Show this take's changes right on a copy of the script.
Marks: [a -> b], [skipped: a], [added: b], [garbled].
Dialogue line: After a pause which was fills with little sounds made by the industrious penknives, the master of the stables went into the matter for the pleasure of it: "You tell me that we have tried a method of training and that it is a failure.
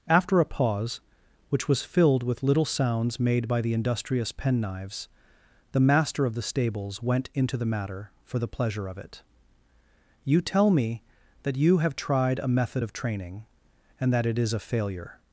After a pause which was [fills -> filled] with little sounds made by the industrious penknives, the master of the stables went into the matter for the pleasure of it: "You tell me that [we -> you] have tried a method of training and that it is a failure.